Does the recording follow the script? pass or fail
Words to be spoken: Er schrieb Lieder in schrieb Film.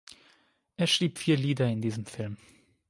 fail